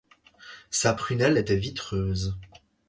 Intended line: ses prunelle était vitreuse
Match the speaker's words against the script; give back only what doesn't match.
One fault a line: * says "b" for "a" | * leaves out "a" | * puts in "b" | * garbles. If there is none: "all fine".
* says "sa" for "ses"